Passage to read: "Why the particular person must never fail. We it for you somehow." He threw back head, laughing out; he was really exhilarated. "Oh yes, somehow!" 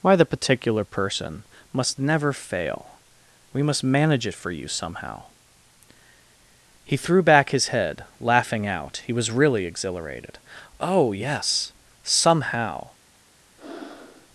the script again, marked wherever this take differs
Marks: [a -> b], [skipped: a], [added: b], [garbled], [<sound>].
"Why the particular person must never fail. We [added: must manage] it for you somehow." He threw back [added: his] head, laughing out; he was really exhilarated. "Oh yes, somehow!" [breath]